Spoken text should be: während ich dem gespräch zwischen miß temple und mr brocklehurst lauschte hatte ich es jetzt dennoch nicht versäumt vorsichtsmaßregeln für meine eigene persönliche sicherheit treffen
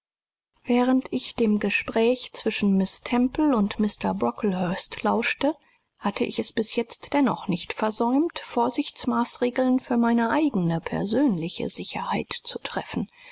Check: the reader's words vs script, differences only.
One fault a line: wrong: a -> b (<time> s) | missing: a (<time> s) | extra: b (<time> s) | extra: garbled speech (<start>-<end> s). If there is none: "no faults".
extra: bis (6.5 s)
extra: zu (12.3 s)